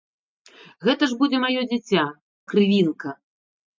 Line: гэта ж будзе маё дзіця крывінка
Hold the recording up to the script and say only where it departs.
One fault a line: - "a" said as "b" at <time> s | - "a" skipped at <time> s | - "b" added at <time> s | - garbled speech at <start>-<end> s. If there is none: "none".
none